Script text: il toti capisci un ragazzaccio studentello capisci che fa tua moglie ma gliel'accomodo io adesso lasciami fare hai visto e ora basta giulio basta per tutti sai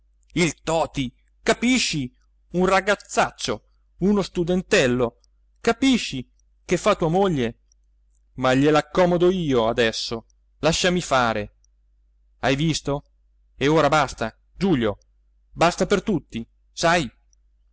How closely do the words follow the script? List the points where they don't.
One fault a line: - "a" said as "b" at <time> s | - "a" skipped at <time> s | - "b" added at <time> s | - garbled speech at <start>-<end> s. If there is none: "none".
- "uno" added at 4.0 s